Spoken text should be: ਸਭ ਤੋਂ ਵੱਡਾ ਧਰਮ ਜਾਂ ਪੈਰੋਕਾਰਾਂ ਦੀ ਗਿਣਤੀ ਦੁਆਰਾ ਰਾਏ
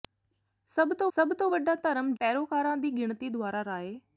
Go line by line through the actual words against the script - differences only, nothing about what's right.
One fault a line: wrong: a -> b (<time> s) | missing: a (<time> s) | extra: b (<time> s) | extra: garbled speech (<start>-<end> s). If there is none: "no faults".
extra: ਸਭ ਤੋਂ (1.2 s)
missing: ਜਾਂ (2.1 s)